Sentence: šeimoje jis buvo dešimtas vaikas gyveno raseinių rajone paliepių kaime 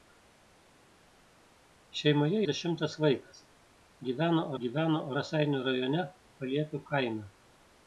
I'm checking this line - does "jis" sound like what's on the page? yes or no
no